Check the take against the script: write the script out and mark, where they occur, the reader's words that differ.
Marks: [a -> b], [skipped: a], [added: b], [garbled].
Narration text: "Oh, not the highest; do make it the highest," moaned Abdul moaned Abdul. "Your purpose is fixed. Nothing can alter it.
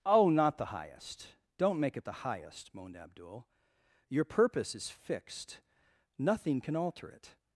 "Oh, not the highest; [do -> don't] make it the highest," moaned Abdul [skipped: moaned Abdul.] "Your purpose is fixed. Nothing can alter it.